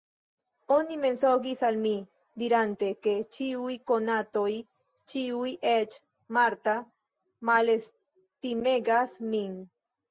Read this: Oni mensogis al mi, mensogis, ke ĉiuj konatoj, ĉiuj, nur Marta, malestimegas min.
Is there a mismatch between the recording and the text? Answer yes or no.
yes